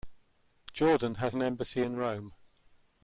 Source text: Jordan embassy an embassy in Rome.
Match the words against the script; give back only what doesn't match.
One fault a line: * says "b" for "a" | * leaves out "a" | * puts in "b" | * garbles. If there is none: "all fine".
* says "has" for "embassy"